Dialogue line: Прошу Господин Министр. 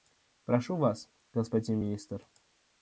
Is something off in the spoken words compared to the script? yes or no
yes